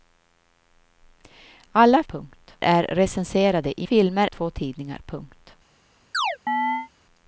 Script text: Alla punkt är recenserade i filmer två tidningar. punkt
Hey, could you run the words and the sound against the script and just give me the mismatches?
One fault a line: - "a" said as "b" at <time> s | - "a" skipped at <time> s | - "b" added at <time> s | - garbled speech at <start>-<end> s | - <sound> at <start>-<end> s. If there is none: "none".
- chirp at 6.1-6.9 s